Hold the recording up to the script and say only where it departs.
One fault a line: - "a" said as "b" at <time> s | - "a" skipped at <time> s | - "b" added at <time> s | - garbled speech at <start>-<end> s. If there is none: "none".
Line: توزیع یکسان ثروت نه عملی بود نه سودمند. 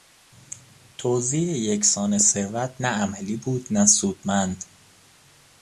none